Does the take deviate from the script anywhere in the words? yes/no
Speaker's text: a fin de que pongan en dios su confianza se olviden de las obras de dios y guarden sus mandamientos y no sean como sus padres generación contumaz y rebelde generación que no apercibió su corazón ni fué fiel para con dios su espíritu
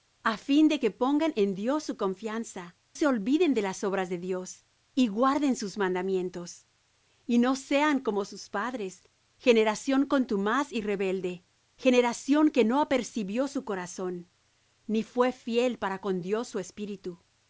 no